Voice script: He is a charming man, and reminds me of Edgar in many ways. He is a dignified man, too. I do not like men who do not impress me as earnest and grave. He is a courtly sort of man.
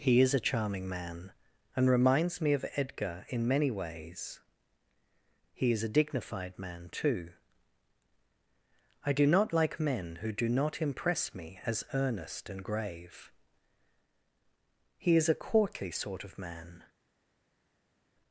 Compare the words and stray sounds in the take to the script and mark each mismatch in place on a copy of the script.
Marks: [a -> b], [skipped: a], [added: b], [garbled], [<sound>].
He is a charming man, and reminds me of Edgar in many ways. He is a dignified man, too. I do not like men who do not impress me as earnest and grave. He is a courtly sort of man.